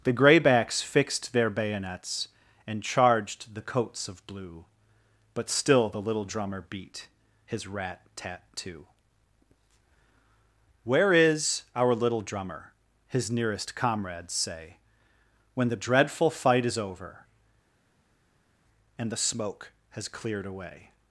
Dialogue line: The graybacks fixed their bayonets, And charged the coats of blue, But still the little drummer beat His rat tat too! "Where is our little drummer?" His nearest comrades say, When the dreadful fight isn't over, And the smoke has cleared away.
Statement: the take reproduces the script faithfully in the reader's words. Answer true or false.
false